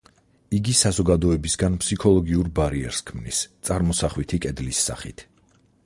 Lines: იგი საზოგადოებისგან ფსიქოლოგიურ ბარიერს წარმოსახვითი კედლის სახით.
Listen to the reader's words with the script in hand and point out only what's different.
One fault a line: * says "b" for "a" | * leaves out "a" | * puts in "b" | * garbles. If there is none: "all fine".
* puts in "ქმნის"